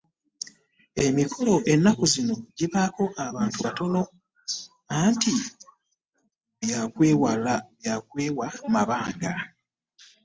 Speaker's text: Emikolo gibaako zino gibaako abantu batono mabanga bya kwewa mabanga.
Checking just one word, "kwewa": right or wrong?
right